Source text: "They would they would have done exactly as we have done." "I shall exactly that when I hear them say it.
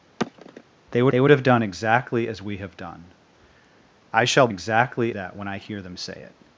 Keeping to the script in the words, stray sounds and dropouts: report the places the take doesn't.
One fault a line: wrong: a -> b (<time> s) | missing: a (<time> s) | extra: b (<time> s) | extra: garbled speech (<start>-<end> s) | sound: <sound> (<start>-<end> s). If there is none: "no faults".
sound: sigh (0.2-0.6 s)